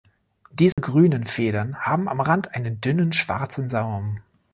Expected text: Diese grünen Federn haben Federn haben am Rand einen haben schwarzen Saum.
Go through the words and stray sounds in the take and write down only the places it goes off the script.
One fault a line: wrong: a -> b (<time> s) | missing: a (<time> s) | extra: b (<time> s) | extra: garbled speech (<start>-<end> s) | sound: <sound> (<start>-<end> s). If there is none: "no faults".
sound: dropout (0.7-0.8 s)
missing: Federn haben (2.1 s)
wrong: haben -> dünnen (2.8 s)